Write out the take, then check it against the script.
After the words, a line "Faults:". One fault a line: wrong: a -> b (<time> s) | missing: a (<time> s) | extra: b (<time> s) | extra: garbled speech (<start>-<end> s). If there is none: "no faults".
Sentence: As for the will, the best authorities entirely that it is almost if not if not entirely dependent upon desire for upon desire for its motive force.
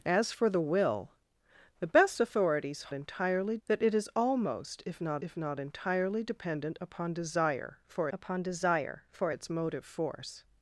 As for the will, the best authorities entirely that it is almost if not if not entirely dependent upon desire for upon desire for its motive force.
Faults:
no faults